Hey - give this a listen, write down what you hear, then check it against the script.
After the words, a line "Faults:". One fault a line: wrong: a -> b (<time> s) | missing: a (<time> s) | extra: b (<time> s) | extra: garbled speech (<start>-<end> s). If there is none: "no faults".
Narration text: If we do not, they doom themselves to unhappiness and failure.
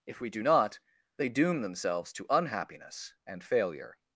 If we do not, they doom themselves to unhappiness and failure.
Faults:
no faults